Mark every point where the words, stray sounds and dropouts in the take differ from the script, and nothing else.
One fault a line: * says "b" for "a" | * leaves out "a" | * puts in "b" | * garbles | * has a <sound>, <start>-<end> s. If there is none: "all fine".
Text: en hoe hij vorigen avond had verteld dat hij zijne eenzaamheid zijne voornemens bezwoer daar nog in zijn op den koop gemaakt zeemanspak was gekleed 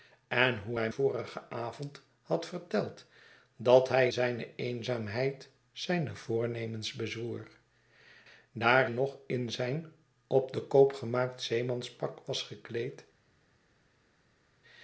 all fine